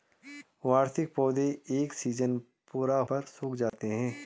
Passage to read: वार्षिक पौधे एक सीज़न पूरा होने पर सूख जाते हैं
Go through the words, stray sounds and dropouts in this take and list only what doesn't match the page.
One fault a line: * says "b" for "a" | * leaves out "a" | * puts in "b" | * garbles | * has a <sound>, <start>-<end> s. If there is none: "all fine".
* leaves out "होने"
* has a dropout, 3.7-3.7 s